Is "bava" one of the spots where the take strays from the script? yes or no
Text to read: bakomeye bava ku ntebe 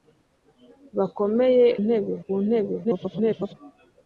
yes